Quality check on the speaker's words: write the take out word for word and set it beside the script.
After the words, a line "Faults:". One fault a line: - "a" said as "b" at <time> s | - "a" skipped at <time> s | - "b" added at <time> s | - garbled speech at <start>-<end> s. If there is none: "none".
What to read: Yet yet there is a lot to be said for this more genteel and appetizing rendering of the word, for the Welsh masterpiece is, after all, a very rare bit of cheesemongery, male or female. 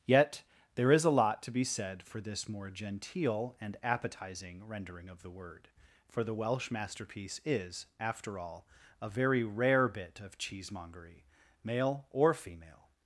Yet there is a lot to be said for this more genteel and appetizing rendering of the word, for the Welsh masterpiece is, after all, a very rare bit of cheesemongery, male or female.
Faults:
- "yet" skipped at 0.4 s